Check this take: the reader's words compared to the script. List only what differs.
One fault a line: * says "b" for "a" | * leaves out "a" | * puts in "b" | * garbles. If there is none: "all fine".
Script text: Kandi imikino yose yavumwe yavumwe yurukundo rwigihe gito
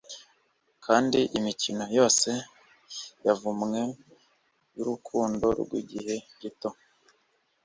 * leaves out "yavumwe"